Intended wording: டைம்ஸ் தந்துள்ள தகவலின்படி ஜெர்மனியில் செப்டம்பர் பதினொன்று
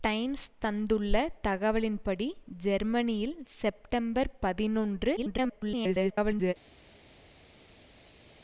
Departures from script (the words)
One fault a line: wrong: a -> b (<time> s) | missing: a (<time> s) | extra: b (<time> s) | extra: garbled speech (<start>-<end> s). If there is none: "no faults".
extra: garbled speech (5.2-6.5 s)